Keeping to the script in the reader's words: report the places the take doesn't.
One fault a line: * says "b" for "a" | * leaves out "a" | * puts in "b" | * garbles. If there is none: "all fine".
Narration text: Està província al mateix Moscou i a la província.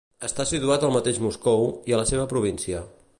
* says "situat" for "província"
* puts in "seva"